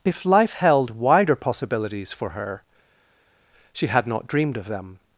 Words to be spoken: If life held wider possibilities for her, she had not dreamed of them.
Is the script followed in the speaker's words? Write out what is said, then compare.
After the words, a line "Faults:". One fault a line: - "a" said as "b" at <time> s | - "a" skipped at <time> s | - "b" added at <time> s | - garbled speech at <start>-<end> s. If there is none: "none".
If life held wider possibilities for her, she had not dreamed of them.
Faults:
none